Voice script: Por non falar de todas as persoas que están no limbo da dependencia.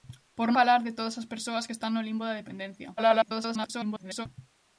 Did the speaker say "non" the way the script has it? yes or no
no